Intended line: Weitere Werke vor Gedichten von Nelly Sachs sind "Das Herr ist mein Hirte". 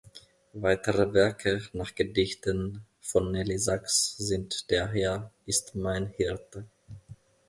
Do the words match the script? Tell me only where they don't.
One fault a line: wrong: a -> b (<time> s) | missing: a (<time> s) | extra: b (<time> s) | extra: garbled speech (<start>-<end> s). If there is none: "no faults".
wrong: vor -> nach (1.7 s)
wrong: Das -> Der (4.7 s)